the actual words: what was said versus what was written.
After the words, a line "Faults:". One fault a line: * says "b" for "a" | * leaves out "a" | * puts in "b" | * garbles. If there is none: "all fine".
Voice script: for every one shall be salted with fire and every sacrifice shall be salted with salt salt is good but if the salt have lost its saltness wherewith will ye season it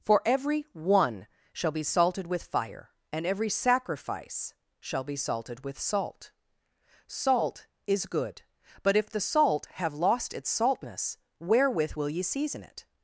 for every one shall be salted with fire and every sacrifice shall be salted with salt salt is good but if the salt have lost its saltness wherewith will ye season it
Faults:
all fine